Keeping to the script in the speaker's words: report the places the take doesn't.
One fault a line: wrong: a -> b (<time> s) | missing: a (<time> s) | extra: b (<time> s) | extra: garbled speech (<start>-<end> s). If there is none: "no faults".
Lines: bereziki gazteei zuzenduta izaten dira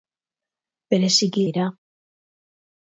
missing: gazteei zuzenduta izaten (1.4 s)